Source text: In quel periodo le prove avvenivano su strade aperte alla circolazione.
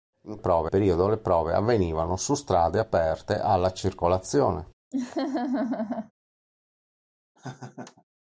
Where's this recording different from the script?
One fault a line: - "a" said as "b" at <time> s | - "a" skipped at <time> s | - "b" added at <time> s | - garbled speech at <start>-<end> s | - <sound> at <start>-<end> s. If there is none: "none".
- "quel" said as "prove" at 0.4 s
- laugh at 4.9-6.1 s
- laugh at 7.4-8.0 s